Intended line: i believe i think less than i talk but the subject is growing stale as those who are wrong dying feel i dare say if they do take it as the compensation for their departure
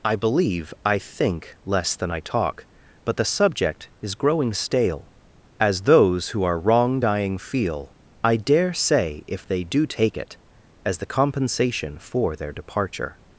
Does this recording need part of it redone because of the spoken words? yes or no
no